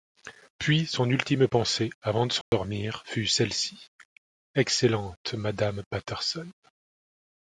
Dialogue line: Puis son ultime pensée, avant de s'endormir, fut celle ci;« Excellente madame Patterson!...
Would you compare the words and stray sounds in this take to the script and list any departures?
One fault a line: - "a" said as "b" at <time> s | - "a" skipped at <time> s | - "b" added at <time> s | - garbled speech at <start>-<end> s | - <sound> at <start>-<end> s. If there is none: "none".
- dropout at 2.4-2.5 s